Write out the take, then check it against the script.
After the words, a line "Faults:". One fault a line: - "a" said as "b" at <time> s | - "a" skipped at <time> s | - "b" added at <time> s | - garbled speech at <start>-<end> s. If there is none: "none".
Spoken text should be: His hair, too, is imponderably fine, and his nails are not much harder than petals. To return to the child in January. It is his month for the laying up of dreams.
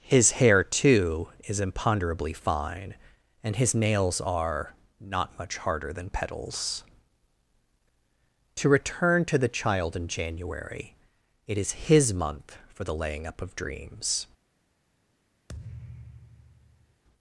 His hair, too, is imponderably fine, and his nails are not much harder than petals. To return to the child in January. It is his month for the laying up of dreams.
Faults:
none